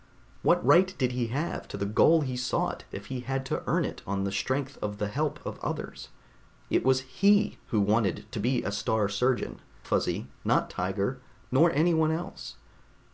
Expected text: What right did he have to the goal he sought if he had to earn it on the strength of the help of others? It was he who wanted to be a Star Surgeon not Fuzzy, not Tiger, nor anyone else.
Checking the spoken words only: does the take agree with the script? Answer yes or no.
no